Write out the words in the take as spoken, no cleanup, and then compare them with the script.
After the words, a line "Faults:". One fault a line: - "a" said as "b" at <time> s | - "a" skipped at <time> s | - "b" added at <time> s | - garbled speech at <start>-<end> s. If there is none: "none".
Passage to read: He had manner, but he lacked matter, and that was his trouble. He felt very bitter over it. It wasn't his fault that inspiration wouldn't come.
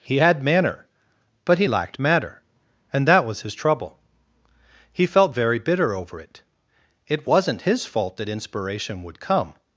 He had manner, but he lacked matter, and that was his trouble. He felt very bitter over it. It wasn't his fault that inspiration would come.
Faults:
- "wouldn't" said as "would" at 9.0 s